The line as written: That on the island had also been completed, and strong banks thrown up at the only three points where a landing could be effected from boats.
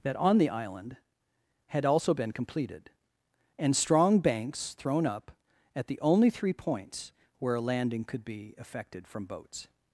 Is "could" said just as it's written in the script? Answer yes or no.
yes